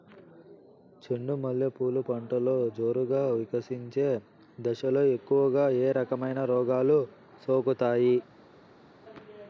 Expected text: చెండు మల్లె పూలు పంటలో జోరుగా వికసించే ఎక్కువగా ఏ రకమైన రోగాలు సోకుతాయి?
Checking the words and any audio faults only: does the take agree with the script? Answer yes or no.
no